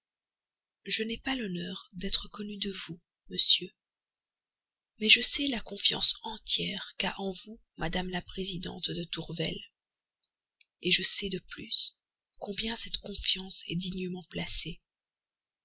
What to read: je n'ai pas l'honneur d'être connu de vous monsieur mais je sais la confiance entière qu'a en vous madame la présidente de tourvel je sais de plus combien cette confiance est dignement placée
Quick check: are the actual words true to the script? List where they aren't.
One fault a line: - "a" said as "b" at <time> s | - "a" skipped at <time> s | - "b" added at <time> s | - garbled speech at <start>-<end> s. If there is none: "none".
none